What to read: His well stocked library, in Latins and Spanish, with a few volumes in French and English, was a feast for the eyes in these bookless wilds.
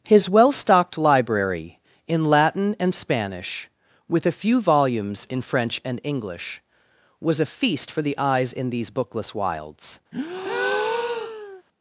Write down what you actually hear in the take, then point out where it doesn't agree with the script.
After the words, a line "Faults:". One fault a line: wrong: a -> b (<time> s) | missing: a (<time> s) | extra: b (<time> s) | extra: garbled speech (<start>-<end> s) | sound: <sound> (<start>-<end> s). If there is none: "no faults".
His well stocked library, in Latin and Spanish, with a few volumes in French and English, was a feast for the eyes in these bookless wilds.
Faults:
wrong: Latins -> Latin (2.2 s)
sound: breath (10.1-11.6 s)